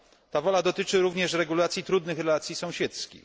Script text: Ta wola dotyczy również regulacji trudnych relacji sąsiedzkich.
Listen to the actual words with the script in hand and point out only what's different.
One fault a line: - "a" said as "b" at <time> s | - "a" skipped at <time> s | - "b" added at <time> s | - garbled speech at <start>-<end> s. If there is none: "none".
none